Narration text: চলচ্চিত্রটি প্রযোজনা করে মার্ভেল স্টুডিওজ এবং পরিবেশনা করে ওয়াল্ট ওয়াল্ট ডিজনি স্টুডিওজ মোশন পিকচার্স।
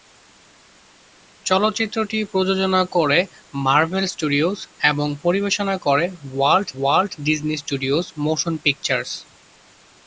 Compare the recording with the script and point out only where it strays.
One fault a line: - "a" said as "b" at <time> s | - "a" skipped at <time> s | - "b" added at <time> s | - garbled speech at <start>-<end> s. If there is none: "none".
none